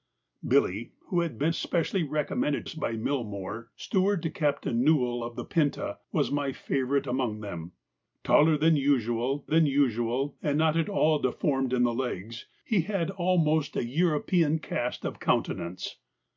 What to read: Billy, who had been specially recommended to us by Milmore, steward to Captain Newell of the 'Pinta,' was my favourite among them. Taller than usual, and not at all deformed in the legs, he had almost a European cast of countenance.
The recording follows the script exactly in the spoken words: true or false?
false